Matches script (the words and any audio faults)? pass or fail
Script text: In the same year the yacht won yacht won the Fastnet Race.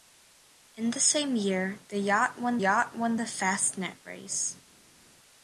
pass